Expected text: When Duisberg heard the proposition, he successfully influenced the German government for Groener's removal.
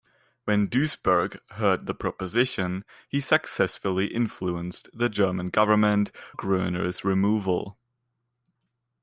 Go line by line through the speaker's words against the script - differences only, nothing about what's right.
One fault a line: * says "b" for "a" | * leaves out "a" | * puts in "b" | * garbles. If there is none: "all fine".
* leaves out "for"